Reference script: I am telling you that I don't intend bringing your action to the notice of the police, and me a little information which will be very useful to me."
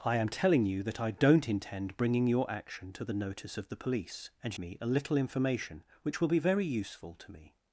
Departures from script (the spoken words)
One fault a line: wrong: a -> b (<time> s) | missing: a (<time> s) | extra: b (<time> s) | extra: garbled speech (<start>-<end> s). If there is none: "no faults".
no faults